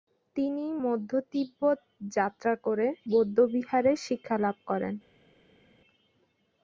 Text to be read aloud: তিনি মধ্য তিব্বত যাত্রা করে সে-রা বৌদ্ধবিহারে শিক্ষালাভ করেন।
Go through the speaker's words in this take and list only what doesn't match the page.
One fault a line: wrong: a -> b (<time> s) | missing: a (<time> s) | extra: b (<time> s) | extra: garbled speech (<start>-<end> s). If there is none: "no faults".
missing: সে-রা (2.9 s)